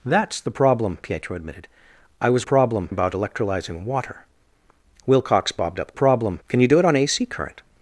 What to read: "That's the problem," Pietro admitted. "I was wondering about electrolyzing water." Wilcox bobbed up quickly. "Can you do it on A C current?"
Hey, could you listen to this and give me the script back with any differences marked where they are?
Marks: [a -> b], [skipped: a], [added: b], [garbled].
"That's the problem," Pietro admitted. "I was [wondering -> problem] about electrolyzing water." Wilcox bobbed up [quickly. -> problem] "Can you do it on A C current?"